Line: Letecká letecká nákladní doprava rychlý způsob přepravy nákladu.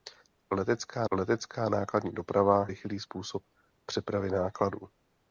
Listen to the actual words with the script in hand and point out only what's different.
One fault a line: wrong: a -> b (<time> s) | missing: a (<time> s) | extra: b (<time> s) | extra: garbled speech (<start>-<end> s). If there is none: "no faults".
no faults